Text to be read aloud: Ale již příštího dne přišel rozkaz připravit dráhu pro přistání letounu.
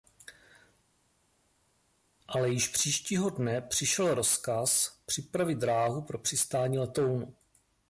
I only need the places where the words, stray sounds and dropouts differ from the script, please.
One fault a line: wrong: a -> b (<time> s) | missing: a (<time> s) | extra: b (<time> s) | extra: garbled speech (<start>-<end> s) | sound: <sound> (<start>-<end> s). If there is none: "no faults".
no faults